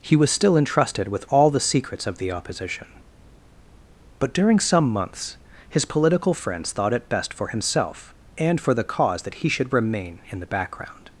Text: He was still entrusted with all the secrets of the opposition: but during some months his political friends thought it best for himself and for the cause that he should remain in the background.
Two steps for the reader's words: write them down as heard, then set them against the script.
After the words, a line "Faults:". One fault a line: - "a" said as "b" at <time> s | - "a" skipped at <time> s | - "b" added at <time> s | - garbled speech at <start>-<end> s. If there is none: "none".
He was still entrusted with all the secrets of the opposition: but during some months his political friends thought it best for himself and for the cause that he should remain in the background.
Faults:
none